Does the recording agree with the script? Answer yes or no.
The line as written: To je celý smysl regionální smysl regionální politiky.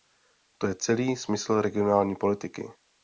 no